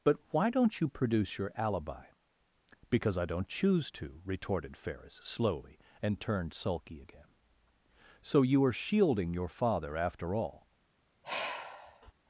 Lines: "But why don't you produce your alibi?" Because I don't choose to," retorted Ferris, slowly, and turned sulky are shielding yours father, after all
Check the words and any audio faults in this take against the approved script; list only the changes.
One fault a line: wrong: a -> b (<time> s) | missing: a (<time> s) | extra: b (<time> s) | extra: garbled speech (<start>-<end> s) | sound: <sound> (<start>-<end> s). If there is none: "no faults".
extra: again So you (7.0 s)
wrong: yours -> your (9.3 s)
sound: sigh (11.2-12.1 s)